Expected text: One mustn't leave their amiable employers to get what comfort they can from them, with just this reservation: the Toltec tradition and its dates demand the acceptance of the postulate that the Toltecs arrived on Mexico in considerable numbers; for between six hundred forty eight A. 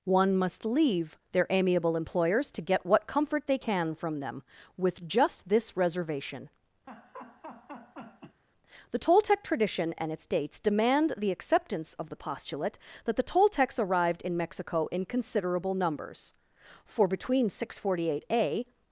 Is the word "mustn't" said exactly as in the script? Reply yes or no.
no